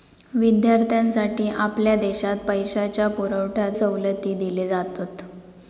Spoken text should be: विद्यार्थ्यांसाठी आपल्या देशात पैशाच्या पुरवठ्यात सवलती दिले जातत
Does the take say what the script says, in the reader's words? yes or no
yes